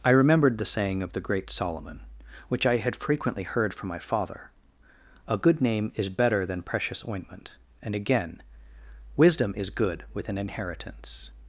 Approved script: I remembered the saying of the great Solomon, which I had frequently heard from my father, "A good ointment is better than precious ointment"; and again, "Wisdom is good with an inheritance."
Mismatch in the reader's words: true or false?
true